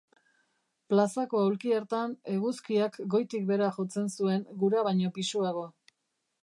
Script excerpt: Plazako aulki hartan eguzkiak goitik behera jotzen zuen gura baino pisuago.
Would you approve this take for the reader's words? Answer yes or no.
yes